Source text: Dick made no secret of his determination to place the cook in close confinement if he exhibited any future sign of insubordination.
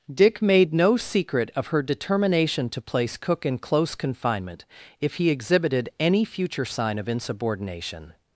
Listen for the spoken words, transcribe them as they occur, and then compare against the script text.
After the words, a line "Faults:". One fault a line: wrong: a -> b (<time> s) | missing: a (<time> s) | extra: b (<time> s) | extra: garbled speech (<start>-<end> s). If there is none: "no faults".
Dick made no secret of her determination to place cook in close confinement if he exhibited any future sign of insubordination.
Faults:
wrong: his -> her (1.7 s)
missing: the (3.2 s)